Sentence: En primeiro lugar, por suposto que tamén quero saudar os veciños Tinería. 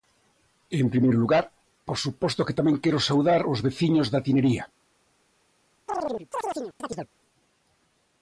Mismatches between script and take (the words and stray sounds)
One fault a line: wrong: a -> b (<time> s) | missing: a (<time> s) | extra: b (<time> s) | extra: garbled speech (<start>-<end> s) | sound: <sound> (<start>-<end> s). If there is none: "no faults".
extra: da (4.1 s)
sound: chirp (5.9-7.1 s)